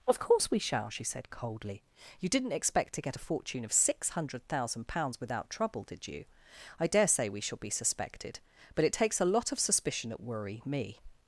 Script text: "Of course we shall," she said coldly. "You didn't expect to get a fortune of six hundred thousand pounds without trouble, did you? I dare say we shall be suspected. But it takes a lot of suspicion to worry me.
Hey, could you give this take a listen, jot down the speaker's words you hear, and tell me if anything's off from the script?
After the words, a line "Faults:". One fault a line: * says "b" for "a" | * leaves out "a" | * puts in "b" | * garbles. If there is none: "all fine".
"Of course we shall," she said coldly. "You didn't expect to get a fortune of six hundred thousand pounds without trouble, did you? I dare say we shall be suspected. But it takes a lot of suspicion at worry me.
Faults:
* says "at" for "to"